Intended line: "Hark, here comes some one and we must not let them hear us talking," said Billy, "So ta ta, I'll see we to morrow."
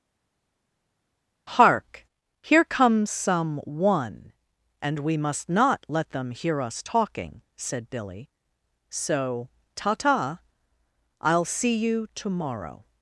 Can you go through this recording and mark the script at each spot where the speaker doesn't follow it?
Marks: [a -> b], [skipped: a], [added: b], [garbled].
"Hark, here comes some one and we must not let them hear us talking," said Billy, "So ta ta, I'll see [we -> you] to morrow."